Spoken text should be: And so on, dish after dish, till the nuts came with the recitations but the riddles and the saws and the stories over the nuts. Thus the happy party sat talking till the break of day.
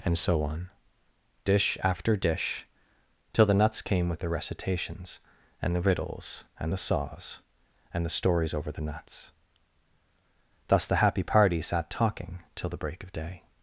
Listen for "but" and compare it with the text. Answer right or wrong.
wrong